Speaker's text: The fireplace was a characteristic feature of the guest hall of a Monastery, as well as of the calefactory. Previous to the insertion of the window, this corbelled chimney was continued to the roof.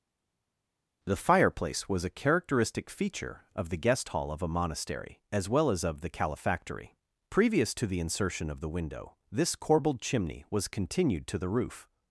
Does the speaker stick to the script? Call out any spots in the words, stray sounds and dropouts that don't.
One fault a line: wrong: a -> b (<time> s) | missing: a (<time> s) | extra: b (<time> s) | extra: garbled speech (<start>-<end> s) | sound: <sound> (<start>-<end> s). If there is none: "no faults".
no faults